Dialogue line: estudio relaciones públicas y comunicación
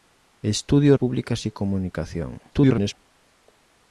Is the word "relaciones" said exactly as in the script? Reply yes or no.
no